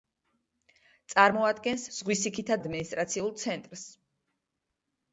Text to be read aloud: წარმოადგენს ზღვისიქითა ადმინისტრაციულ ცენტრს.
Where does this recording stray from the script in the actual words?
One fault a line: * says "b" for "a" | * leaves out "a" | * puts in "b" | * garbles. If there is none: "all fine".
all fine